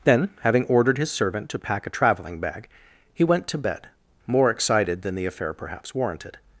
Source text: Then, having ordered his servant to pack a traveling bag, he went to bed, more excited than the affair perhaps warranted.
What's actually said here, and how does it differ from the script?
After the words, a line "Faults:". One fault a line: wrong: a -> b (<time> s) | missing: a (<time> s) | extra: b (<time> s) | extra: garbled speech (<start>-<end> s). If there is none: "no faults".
Then, having ordered his servant to pack a traveling bag, he went to bed, more excited than the affair perhaps warranted.
Faults:
no faults